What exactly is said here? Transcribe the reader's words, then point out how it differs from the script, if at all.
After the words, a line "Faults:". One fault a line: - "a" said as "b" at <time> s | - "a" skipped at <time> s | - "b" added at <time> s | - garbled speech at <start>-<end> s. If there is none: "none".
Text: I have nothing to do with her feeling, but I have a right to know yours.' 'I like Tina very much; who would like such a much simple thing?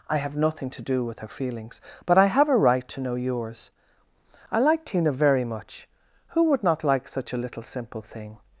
I have nothing to do with her feelings, but I have a right to know yours.' 'I like Tina very much; who would not like such a little simple thing?
Faults:
- "feeling" said as "feelings" at 1.3 s
- "not" added at 6.6 s
- "much" said as "little" at 7.4 s